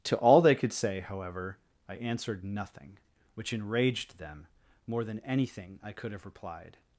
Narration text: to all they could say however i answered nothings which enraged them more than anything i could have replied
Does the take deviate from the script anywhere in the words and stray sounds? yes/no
yes